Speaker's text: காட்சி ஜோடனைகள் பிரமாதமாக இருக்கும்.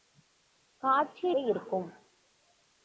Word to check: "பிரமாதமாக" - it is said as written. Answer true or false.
false